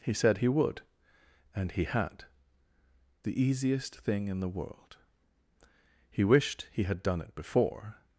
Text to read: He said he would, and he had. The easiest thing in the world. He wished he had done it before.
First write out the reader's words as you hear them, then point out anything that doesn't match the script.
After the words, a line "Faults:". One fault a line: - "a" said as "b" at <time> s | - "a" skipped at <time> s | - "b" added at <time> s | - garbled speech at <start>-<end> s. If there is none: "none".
He said he would, and he had. The easiest thing in the world. He wished he had done it before.
Faults:
none